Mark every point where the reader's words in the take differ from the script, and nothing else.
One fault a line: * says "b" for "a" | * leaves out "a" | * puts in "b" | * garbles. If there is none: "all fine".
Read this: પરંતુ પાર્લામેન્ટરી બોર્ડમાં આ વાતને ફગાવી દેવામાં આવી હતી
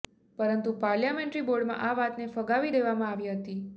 all fine